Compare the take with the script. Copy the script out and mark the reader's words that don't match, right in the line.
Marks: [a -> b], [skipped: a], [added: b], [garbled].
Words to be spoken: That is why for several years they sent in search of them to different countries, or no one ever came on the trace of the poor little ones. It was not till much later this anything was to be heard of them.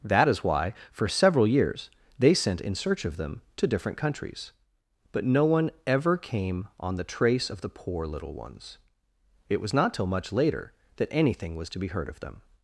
That is why for several years they sent in search of them to different countries, [or -> but] no one ever came on the trace of the poor little ones. It was not till much later [this -> that] anything was to be heard of them.